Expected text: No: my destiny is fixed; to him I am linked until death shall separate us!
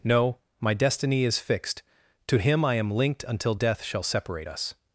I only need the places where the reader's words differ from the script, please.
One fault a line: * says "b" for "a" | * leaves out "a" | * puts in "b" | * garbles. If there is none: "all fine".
all fine